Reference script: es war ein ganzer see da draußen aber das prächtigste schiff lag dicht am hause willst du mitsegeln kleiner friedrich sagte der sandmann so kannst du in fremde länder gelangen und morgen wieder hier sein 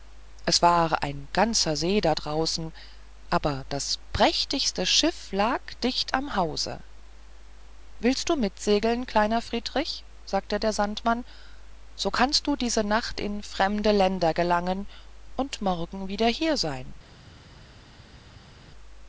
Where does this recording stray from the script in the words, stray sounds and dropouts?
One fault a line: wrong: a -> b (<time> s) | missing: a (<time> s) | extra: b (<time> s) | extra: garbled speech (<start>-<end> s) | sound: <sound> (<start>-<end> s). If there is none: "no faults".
extra: diese nacht (12.6 s)